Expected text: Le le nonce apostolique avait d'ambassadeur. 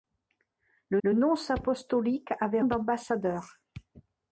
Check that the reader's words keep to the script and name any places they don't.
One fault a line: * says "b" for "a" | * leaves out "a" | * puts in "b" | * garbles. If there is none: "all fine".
all fine